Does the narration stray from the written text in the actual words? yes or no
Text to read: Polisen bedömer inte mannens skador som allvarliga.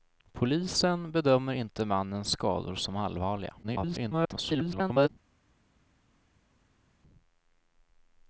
yes